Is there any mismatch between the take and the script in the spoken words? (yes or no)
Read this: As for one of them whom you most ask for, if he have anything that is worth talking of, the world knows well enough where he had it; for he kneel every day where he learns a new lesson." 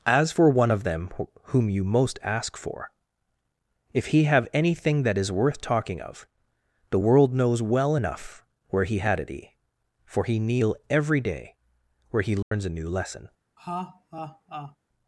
no